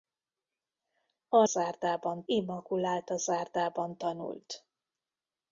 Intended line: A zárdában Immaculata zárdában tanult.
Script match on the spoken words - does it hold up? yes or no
yes